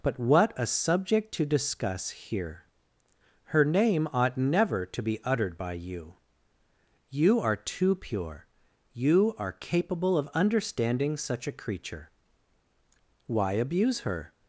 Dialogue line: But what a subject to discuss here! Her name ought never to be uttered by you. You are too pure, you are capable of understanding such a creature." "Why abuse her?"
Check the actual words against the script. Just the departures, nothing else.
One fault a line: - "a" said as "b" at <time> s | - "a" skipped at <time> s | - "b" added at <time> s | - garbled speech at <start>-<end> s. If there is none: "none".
none